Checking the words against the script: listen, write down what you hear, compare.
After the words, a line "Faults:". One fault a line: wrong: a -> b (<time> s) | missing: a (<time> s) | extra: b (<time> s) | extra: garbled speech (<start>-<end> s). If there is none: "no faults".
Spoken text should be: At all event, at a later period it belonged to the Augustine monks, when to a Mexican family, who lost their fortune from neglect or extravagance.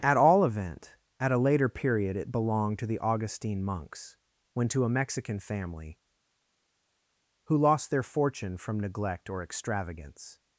At all event, at a later period it belonged to the Augustine monks, when to a Mexican family, who lost their fortune from neglect or extravagance.
Faults:
no faults